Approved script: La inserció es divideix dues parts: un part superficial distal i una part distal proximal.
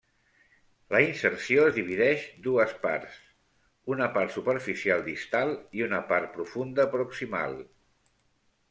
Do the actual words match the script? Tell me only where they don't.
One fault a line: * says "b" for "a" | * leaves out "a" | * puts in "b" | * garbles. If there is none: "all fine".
* says "una" for "un"
* says "profunda" for "distal"